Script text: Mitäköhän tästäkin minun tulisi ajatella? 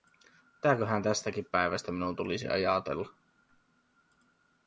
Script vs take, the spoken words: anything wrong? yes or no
yes